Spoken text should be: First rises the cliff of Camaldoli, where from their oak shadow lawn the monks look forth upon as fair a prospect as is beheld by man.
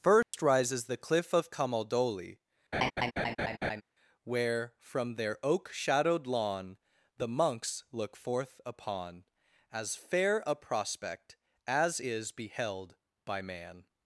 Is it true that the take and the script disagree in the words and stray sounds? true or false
true